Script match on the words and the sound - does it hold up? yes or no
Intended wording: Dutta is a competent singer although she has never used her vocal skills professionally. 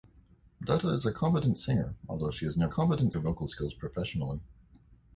no